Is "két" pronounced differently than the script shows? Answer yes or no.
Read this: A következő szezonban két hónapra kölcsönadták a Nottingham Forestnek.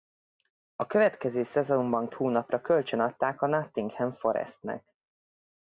yes